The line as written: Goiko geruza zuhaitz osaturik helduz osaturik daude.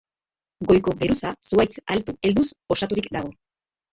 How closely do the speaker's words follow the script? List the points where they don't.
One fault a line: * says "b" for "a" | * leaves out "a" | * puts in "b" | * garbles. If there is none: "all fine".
* says "altu" for "osaturik"
* says "dago" for "daude"